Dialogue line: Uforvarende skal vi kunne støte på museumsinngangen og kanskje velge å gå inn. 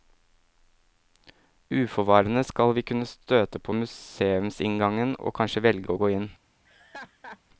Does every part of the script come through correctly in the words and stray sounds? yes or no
no